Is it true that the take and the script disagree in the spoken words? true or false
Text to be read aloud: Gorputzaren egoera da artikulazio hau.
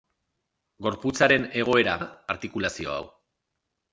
false